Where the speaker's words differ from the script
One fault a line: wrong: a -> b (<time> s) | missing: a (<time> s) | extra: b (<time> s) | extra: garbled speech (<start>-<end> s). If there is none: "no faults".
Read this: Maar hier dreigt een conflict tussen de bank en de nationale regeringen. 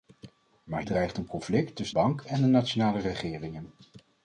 missing: hier (0.8 s)
missing: de (2.0 s)